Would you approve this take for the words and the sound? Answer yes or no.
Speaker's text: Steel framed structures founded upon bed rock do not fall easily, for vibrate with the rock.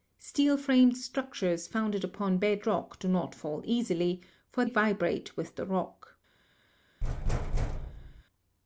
no